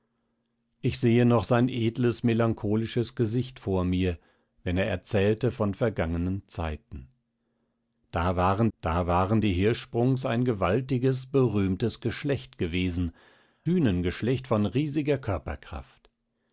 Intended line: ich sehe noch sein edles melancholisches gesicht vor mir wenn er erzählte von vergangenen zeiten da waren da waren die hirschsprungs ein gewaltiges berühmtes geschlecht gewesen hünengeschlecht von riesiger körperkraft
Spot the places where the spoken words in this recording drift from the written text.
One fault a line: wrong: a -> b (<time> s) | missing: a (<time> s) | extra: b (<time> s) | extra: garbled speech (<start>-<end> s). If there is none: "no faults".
no faults